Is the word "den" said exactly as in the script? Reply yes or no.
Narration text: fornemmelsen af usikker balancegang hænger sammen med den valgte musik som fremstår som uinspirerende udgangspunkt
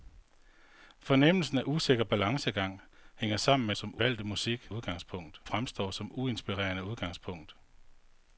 no